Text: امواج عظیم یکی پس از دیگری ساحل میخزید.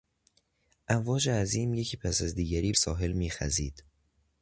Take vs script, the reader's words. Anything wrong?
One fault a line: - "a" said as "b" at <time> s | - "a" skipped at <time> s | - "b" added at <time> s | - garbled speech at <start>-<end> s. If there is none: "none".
none